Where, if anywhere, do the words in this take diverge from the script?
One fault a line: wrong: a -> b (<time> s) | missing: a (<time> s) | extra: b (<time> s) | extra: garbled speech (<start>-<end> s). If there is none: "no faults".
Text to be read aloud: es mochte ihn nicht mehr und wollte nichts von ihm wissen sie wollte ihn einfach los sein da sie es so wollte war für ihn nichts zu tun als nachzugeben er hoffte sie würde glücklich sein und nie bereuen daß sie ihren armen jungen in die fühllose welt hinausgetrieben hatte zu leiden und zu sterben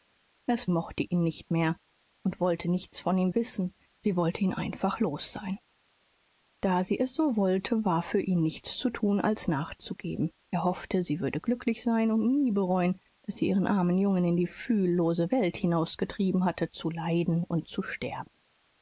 no faults